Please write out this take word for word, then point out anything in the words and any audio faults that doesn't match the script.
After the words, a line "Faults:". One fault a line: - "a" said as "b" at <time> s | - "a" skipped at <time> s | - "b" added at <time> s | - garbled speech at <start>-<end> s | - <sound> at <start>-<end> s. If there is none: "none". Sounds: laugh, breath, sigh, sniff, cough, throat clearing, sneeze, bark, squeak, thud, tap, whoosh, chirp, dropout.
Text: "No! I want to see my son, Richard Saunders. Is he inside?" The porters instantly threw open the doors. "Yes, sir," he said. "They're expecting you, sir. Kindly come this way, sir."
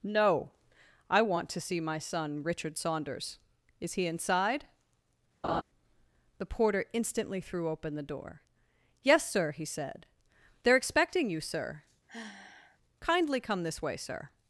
"No! I want to see my son, Richard Saunders. Is he inside?" The porter instantly threw open the door. "Yes, sir," he said. "They're expecting you, sir. Kindly come this way, sir."
Faults:
- laugh at 5.4-5.6 s
- "porters" said as "porter" at 6.4 s
- "doors" said as "door" at 8.0 s
- sigh at 12.1-12.8 s